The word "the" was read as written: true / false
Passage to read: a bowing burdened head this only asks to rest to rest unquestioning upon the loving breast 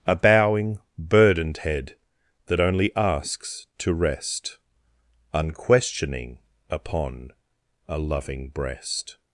false